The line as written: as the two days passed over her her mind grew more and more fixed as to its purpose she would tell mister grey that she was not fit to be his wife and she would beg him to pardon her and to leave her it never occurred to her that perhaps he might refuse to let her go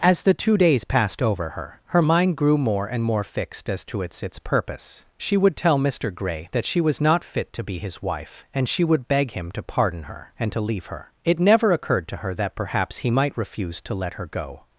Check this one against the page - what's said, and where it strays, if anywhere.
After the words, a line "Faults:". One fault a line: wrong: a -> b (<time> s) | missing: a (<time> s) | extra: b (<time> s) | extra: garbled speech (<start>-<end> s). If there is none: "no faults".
as the two days passed over her her mind grew more and more fixed as to its its purpose she would tell mister grey that she was not fit to be his wife and she would beg him to pardon her and to leave her it never occurred to her that perhaps he might refuse to let her go
Faults:
extra: its (4.2 s)